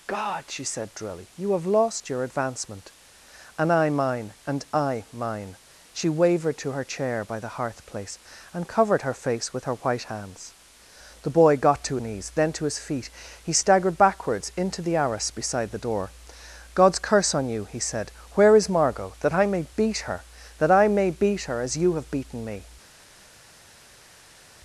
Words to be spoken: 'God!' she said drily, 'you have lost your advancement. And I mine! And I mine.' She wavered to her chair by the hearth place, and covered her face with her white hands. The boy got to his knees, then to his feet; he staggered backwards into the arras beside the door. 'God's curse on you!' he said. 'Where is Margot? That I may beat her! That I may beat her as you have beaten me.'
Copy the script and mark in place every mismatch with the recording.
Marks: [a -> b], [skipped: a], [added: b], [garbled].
'God!' she said drily, 'you have lost your advancement. And I mine! And I mine.' She wavered to her chair by the hearth place, and covered her face with her white hands. The boy got to [skipped: his] knees, then to his feet; he staggered backwards into the arras beside the door. 'God's curse on you!' he said. 'Where is Margot? That I may beat her! That I may beat her as you have beaten me.'